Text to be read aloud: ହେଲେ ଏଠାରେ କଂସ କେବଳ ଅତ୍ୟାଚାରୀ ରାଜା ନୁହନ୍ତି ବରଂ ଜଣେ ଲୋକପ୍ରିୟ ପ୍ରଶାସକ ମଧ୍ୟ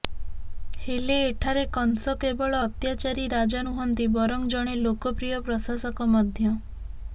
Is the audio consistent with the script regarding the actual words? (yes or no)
yes